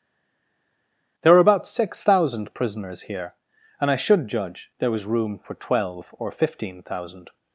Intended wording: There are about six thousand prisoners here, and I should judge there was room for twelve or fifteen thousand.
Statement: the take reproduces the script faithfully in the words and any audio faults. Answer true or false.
true